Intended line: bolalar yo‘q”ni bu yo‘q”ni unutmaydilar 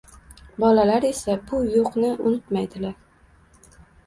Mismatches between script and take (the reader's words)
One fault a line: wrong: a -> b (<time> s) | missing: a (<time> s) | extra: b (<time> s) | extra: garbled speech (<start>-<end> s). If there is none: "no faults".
wrong: yo‘q”ni -> esa (1.1 s)